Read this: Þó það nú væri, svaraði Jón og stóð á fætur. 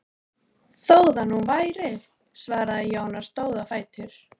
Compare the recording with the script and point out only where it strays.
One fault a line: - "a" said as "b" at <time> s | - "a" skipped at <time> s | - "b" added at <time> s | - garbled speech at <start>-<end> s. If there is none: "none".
none